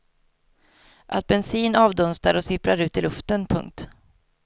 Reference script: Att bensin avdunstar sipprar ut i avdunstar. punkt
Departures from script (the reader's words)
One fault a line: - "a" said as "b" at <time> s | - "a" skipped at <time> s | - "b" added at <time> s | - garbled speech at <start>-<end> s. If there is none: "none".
- "och" added at 2.3 s
- "avdunstar" said as "luften" at 3.0 s